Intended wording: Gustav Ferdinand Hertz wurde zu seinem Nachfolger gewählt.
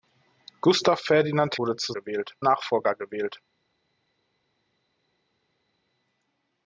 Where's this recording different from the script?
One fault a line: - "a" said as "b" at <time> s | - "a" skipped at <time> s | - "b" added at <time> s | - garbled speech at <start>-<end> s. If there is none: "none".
- "Hertz" skipped at 1.6 s
- "seinem" said as "gewählt" at 1.9 s